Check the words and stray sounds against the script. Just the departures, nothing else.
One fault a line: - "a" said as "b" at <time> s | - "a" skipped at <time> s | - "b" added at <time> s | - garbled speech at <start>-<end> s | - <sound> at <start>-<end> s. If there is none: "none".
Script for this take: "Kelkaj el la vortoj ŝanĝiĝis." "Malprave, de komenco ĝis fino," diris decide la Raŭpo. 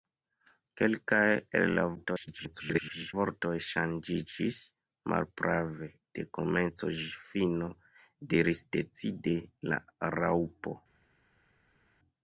- garbled speech at 2.0-3.1 s